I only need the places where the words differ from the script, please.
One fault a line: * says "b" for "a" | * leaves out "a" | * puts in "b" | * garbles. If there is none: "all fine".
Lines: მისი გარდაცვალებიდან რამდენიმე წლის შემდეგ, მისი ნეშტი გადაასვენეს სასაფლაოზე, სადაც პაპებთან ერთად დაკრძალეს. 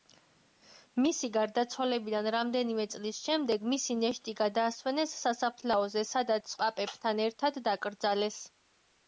all fine